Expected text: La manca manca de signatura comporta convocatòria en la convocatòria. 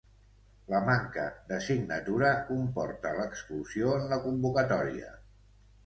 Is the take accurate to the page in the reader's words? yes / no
no